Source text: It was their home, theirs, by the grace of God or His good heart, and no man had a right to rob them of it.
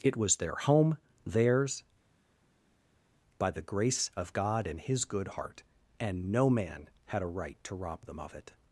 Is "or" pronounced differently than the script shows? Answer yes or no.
yes